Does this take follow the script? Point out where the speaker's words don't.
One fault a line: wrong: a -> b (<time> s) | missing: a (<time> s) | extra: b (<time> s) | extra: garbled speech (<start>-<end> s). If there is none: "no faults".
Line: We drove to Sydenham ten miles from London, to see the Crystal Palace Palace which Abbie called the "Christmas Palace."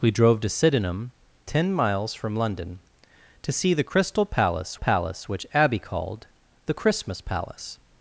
no faults